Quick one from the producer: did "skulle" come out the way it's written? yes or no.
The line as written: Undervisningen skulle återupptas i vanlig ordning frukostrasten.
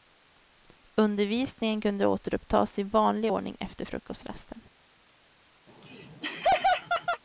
no